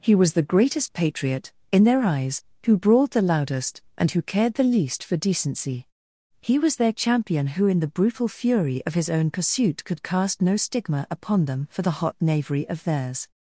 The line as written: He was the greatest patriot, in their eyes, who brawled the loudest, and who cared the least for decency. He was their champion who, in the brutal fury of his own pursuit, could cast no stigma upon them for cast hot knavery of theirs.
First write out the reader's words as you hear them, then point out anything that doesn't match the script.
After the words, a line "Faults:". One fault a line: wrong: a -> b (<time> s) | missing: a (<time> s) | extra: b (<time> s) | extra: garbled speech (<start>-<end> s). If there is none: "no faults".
He was the greatest patriot, in their eyes, who brawled the loudest, and who cared the least for decency. He was their champion who, in the brutal fury of his own pursuit, could cast no stigma upon them for the hot knavery of theirs.
Faults:
wrong: cast -> the (11.8 s)